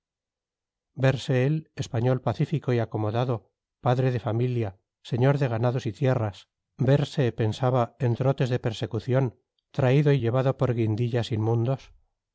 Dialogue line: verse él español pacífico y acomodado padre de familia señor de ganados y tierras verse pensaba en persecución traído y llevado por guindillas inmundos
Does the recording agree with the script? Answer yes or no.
no